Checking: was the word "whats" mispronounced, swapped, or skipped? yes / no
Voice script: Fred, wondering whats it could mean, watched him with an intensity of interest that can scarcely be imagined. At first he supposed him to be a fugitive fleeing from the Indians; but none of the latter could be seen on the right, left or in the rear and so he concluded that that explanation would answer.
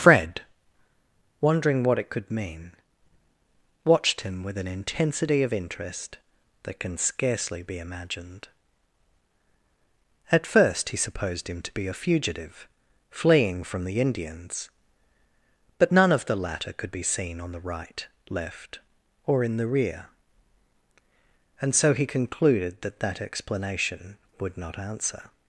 yes